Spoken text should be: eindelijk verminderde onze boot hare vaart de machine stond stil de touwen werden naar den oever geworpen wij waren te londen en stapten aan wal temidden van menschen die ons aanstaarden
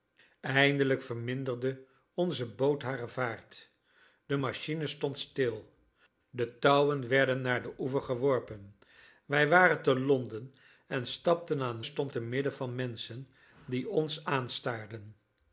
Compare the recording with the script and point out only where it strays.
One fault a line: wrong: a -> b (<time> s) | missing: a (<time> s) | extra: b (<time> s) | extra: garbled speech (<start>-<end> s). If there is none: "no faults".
wrong: wal -> stond (11.8 s)